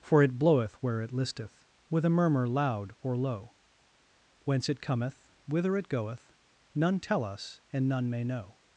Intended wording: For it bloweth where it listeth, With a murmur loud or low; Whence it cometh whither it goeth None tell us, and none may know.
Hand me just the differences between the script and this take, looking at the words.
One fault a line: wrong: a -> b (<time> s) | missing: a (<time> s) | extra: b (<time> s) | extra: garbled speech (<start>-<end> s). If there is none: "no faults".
no faults